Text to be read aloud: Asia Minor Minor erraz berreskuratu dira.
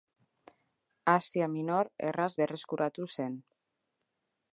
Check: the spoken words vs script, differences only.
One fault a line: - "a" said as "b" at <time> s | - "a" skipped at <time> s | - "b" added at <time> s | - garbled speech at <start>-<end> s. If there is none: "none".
- "Minor" skipped at 1.9 s
- "dira" said as "zen" at 3.1 s